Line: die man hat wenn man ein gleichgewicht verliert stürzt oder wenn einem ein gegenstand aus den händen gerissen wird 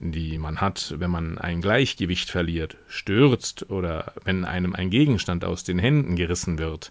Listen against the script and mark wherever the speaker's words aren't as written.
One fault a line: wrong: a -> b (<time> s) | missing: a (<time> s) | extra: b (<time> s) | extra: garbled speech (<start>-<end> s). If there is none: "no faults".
no faults